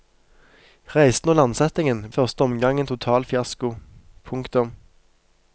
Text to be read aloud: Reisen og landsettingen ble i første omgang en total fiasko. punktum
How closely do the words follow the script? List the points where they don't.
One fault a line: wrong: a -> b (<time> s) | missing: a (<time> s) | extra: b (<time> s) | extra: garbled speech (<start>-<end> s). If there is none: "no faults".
missing: ble (2.0 s)